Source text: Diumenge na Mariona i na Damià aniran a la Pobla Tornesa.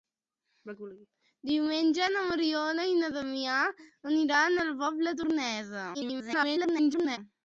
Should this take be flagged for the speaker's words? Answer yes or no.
yes